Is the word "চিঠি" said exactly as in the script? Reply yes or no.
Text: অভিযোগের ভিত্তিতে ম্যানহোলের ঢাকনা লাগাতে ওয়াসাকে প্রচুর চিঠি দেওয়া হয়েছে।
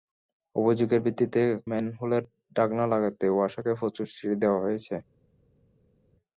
yes